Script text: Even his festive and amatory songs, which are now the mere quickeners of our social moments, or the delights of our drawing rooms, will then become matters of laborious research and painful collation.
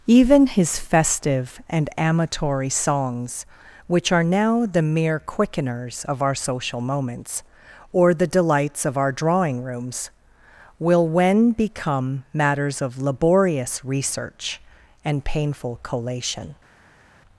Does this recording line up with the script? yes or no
no